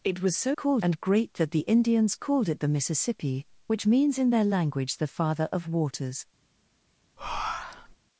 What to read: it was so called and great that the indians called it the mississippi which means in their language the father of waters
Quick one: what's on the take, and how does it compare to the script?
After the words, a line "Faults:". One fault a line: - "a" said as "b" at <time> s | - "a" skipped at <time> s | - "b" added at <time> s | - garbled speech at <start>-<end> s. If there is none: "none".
it was so called and great that the indians called it the mississippi which means in their language the father of waters
Faults:
none